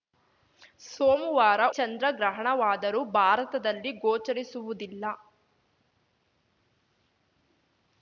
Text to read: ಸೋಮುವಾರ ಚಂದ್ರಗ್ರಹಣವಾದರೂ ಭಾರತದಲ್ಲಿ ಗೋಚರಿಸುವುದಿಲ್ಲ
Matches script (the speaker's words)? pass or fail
pass